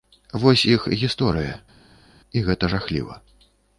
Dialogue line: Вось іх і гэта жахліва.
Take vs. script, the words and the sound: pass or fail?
fail